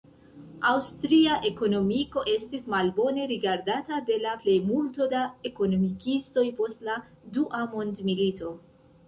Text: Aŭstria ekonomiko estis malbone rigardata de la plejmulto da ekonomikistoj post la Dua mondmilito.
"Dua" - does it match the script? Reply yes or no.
yes